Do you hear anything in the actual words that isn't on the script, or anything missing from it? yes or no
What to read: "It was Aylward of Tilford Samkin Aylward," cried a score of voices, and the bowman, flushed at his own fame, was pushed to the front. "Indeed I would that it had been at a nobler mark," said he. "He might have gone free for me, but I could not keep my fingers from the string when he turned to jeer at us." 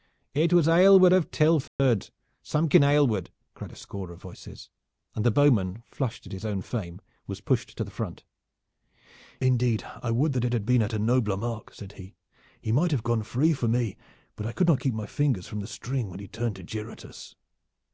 no